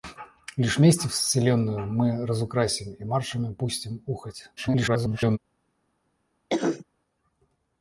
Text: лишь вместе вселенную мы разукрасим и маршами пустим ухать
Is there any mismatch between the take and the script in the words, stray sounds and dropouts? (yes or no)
yes